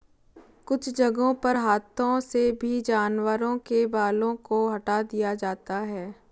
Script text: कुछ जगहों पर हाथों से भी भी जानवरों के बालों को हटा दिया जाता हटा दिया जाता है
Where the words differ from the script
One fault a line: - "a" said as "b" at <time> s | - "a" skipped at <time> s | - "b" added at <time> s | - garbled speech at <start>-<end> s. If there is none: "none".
- "भी" skipped at 2.8 s
- "हटा दिया जाता" skipped at 5.8 s